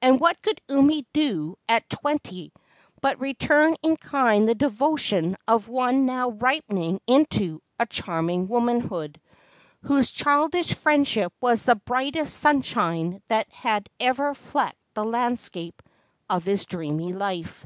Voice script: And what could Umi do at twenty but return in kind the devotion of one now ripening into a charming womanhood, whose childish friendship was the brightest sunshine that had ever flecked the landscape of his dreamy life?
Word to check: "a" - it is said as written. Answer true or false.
true